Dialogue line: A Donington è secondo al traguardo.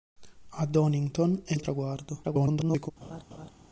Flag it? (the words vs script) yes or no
yes